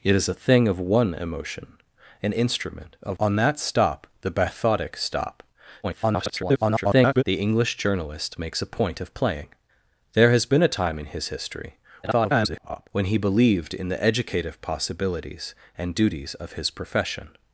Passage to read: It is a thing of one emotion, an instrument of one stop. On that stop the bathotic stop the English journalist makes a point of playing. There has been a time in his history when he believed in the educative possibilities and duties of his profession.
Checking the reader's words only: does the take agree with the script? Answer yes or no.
no